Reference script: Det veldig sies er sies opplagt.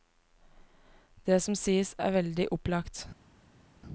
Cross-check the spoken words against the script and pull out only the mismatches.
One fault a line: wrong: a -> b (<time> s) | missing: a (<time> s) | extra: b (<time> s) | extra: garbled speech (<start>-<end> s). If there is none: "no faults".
wrong: veldig -> som (1.4 s)
wrong: sies -> veldig (2.1 s)